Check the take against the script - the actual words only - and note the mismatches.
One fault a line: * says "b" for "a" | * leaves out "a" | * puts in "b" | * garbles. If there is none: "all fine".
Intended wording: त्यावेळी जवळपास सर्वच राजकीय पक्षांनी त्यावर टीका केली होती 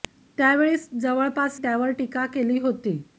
* leaves out "सर्वच राजकीय पक्षांनी"